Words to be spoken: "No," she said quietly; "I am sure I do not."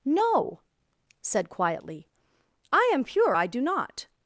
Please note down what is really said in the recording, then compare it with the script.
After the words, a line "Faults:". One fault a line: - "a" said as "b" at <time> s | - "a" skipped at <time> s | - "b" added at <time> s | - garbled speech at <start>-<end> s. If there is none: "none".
"No," said quietly; "I am pure I do not."
Faults:
- "she" skipped at 0.6 s
- "sure" said as "pure" at 3.0 s